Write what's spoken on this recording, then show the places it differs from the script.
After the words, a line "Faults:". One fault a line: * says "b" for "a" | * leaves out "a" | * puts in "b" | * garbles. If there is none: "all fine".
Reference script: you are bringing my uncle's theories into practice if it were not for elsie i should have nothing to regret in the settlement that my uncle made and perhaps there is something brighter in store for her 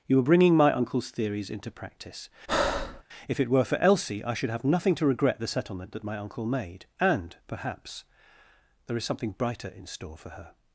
you are bringing my uncle's theories into practice if it were for elsie i should have nothing to regret the settlement that my uncle made and perhaps there is something brighter in store for her
Faults:
* leaves out "not"
* leaves out "in"